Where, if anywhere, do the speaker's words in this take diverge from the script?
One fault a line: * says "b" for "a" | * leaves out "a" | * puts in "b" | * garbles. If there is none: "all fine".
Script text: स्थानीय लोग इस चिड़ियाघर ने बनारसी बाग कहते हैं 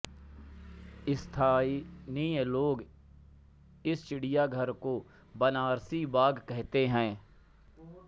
* says "को" for "ने"